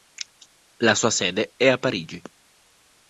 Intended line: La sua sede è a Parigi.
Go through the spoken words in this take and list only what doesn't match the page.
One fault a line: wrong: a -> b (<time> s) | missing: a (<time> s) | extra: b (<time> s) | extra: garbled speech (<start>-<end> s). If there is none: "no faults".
no faults